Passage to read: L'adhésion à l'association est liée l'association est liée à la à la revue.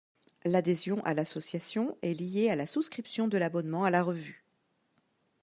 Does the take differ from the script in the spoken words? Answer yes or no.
yes